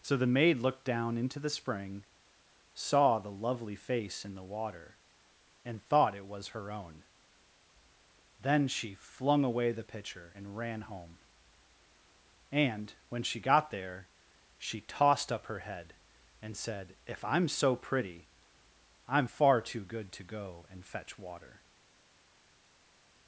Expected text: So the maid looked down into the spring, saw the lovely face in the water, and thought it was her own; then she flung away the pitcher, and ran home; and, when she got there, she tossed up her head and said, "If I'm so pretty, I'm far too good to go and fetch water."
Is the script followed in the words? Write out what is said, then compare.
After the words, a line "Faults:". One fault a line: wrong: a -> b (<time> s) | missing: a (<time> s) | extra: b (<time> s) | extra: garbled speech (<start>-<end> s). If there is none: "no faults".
So the maid looked down into the spring, saw the lovely face in the water, and thought it was her own; then she flung away the pitcher, and ran home; and, when she got there, she tossed up her head and said, "If I'm so pretty, I'm far too good to go and fetch water."
Faults:
no faults